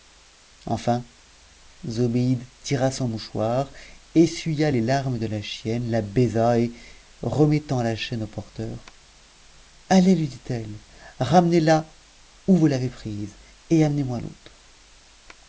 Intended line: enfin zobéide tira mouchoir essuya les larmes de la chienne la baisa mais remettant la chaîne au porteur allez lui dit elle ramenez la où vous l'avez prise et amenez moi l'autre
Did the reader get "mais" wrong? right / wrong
wrong